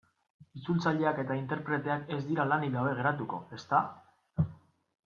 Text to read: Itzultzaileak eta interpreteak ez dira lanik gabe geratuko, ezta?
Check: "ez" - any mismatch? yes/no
no